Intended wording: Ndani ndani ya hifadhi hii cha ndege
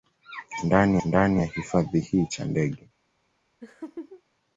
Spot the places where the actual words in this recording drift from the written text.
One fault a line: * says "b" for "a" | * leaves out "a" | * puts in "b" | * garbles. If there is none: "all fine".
all fine